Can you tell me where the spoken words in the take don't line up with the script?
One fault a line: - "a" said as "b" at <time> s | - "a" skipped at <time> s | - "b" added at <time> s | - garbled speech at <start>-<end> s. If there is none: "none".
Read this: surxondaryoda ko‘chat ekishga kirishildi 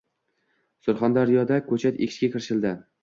none